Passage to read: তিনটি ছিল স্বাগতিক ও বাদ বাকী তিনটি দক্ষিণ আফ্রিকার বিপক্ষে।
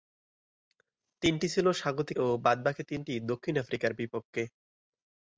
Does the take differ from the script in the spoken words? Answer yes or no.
no